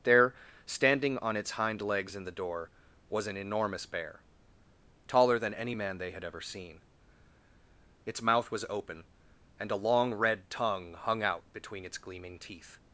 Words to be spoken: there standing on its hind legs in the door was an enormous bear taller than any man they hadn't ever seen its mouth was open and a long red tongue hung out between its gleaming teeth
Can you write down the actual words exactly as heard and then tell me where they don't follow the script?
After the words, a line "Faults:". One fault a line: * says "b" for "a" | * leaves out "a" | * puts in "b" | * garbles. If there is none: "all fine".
there standing on its hind legs in the door was an enormous bear taller than any man they had ever seen its mouth was open and a long red tongue hung out between its gleaming teeth
Faults:
* says "had" for "hadn't"